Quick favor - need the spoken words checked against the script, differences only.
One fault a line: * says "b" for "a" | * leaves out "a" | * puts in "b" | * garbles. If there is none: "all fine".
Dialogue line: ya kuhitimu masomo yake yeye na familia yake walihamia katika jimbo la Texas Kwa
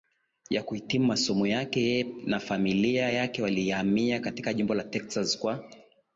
all fine